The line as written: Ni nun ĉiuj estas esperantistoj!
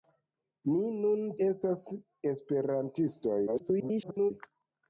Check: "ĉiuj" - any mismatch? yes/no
yes